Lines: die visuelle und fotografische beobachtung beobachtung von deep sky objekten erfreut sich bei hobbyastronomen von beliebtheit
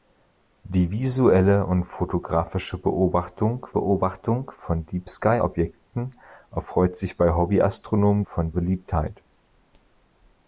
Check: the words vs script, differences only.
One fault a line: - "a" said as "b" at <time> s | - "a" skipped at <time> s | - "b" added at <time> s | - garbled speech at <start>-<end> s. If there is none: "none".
none